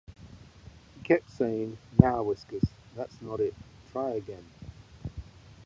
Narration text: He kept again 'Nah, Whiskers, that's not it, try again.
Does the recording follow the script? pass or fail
fail